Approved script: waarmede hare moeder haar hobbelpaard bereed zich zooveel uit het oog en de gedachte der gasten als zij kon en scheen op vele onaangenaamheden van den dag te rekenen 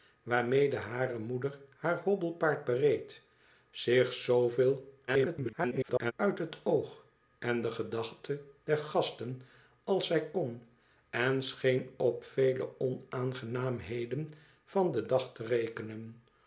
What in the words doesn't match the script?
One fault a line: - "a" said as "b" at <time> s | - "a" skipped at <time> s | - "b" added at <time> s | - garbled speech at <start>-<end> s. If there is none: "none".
- garbled speech at 5.1-6.1 s